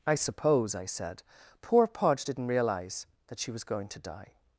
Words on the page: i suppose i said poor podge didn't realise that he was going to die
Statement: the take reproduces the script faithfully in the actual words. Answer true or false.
false